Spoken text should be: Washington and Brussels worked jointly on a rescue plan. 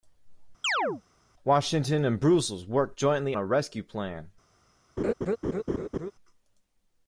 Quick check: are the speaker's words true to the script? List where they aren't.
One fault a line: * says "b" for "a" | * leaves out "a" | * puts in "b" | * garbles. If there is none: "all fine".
* leaves out "on"